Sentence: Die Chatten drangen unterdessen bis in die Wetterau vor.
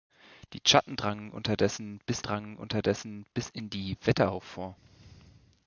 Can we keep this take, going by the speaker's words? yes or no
no